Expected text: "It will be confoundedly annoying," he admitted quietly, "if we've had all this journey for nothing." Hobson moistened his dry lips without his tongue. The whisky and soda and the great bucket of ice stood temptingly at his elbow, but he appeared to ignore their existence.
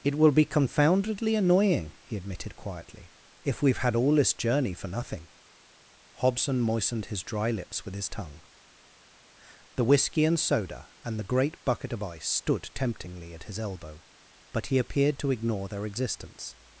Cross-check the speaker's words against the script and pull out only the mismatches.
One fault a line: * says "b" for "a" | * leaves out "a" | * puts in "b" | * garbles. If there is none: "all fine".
* says "with" for "without"